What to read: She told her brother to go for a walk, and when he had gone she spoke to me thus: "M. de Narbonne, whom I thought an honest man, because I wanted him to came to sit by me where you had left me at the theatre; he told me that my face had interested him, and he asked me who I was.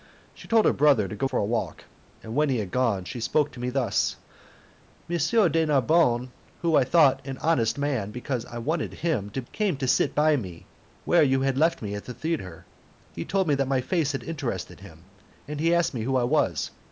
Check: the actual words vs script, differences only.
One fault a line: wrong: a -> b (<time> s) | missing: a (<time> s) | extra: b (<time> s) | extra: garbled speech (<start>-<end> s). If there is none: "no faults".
no faults